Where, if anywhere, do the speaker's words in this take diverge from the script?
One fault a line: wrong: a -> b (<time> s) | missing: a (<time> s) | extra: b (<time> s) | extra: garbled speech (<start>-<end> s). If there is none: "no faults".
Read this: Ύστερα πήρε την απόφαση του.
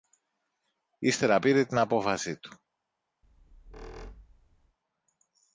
no faults